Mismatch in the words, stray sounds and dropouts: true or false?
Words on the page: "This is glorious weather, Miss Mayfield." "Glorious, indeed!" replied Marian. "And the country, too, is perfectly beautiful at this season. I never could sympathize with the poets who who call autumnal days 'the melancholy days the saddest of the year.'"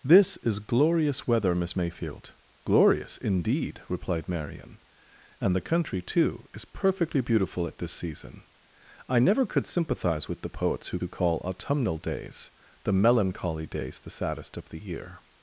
false